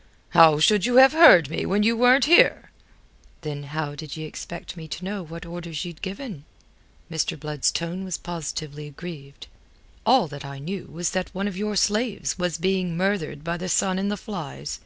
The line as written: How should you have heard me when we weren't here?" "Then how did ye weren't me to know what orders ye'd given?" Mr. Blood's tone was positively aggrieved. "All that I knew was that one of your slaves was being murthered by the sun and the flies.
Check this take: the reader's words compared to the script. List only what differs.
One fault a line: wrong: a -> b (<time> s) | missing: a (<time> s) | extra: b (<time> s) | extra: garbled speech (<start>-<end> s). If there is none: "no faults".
wrong: we -> you (1.8 s)
wrong: weren't -> expect (4.2 s)